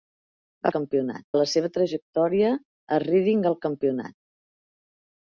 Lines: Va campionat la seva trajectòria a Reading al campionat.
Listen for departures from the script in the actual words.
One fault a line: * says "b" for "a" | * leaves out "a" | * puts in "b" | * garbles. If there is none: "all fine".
all fine